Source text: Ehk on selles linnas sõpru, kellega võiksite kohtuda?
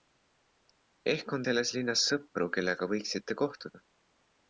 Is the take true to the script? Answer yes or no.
yes